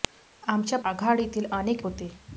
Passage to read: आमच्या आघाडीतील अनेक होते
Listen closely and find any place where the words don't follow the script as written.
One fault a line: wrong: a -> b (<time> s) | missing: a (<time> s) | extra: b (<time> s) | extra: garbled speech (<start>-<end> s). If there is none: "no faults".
no faults